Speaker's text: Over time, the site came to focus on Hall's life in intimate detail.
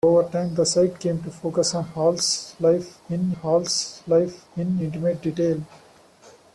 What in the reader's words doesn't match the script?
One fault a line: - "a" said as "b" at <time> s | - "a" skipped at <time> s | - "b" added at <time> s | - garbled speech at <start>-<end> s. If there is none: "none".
- "Hall's life in" added at 3.3 s